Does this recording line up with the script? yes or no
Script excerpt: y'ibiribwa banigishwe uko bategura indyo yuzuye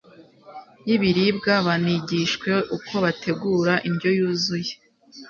yes